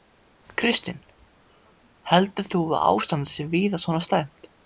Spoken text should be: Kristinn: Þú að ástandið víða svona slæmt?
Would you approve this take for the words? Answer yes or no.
no